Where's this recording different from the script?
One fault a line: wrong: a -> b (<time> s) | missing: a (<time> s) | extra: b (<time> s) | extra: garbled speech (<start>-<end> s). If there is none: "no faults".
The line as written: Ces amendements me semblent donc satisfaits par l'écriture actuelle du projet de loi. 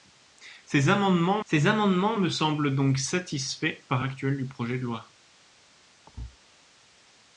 extra: ces amendements (1.4 s)
missing: l'écriture (4.0 s)